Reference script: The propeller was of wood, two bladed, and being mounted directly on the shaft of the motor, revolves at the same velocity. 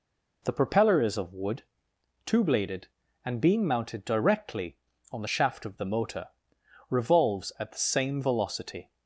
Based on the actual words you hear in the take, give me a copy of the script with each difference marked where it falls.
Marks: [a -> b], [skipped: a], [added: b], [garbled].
The propeller [was -> is] of wood, two bladed, and being mounted directly on the shaft of the motor, revolves at the same velocity.